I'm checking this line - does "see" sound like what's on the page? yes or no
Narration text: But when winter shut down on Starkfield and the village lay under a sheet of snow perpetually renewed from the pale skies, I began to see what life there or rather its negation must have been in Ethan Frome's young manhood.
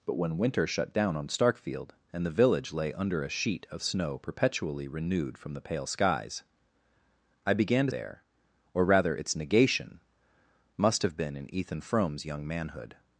no